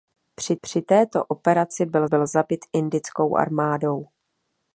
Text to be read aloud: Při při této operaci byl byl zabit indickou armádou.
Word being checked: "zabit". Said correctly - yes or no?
yes